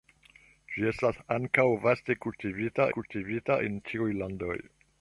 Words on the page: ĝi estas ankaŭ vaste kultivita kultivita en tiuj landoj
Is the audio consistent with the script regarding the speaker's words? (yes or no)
yes